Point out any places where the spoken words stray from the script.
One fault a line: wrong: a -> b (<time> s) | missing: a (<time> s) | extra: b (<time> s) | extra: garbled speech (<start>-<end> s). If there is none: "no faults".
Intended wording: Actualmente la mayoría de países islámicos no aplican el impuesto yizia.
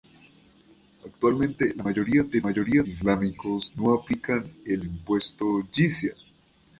wrong: países -> mayoría (2.4 s)